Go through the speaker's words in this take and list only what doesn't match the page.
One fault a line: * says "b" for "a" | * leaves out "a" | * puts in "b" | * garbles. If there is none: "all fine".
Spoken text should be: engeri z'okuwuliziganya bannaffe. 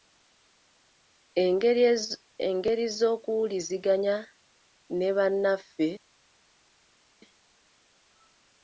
* puts in "ne"